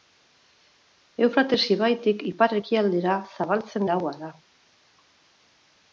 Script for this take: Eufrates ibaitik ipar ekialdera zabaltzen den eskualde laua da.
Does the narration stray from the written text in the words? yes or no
yes